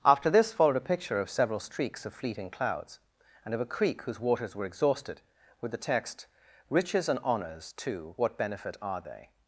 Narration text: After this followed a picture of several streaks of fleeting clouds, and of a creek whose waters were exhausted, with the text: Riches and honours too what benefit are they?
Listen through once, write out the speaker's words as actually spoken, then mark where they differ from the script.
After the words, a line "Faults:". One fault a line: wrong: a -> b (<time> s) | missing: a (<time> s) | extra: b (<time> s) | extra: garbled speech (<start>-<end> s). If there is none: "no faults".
After this followed a picture of several streaks of fleeting clouds, and of a creek whose waters were exhausted, with the text: Riches and honours too what benefit are they?
Faults:
no faults